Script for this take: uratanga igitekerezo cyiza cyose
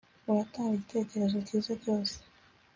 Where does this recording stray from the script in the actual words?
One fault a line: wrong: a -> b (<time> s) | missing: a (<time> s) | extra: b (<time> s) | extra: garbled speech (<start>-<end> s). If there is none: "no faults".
no faults